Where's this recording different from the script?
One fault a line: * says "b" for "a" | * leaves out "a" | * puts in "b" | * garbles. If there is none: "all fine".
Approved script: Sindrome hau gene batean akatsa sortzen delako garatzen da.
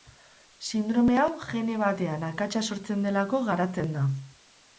all fine